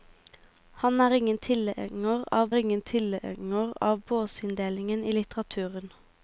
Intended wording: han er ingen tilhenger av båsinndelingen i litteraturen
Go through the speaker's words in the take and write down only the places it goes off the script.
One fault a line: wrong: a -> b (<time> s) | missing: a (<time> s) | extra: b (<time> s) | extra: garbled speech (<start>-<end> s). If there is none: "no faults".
extra: ingen tilhenger av (2.5 s)